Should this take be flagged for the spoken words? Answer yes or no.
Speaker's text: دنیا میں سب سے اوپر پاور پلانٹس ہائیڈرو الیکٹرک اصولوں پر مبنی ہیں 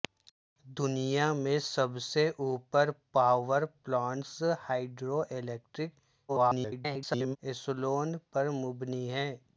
yes